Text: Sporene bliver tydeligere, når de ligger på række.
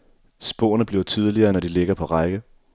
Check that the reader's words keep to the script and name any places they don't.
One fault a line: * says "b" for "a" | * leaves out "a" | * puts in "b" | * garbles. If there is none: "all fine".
all fine